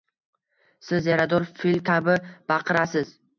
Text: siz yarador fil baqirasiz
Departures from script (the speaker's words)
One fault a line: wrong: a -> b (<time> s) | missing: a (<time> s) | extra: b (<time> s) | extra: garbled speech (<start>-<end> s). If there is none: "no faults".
extra: kabi (1.9 s)